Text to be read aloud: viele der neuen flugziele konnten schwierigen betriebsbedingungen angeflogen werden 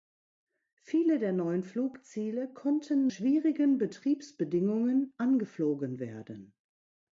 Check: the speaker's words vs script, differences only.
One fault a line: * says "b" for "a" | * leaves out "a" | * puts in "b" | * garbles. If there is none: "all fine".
all fine